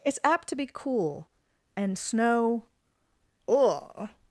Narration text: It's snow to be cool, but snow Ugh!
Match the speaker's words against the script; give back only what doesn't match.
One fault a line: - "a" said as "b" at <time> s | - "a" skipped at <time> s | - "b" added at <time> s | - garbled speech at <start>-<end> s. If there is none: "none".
- "snow" said as "apt" at 0.2 s
- "but" said as "and" at 1.8 s